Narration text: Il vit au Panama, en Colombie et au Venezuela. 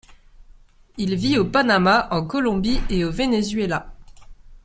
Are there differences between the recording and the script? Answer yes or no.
no